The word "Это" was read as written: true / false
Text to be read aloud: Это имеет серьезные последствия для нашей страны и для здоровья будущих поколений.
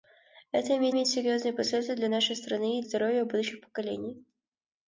true